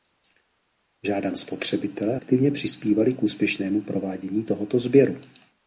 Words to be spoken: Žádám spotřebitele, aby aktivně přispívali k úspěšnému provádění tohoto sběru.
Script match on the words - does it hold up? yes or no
no